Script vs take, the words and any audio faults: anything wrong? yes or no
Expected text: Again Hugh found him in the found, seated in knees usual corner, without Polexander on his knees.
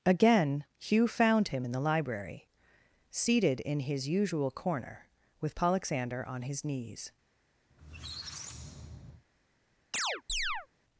yes